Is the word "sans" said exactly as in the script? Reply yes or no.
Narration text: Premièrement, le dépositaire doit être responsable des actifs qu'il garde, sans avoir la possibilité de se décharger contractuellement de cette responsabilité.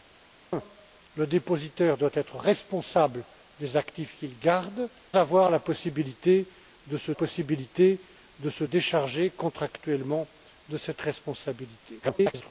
no